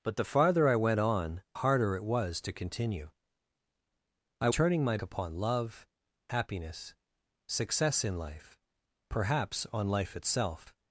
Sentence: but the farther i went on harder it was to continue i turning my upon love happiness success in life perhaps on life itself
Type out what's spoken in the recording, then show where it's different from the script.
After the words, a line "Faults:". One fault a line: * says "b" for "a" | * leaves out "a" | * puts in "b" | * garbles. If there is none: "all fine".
but the farther i went on harder it was to continue i turning my upon love happiness success in life perhaps on life itself
Faults:
all fine